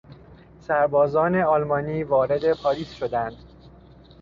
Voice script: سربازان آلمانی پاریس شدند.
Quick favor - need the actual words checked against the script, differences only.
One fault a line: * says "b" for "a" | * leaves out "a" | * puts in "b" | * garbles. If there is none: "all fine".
* puts in "وارد"